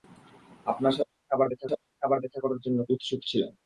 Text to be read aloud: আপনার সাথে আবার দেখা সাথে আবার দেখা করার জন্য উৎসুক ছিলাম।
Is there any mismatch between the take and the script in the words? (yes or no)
no